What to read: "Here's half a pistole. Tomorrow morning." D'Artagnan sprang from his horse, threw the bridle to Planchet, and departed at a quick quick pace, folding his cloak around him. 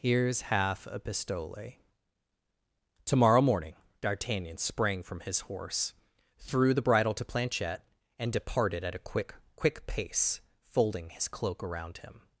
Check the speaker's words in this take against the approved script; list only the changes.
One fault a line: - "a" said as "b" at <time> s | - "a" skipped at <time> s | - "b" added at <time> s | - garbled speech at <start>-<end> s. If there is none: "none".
none